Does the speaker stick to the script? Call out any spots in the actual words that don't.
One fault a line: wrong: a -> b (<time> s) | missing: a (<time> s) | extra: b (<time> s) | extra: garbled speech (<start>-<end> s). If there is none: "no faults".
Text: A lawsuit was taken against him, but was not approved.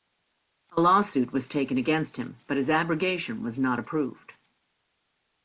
extra: his abrogation (2.6 s)